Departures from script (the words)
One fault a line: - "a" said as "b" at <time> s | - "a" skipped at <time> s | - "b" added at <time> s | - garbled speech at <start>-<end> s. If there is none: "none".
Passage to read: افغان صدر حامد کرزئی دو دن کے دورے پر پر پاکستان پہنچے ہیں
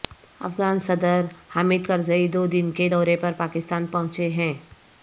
- "پر" skipped at 3.3 s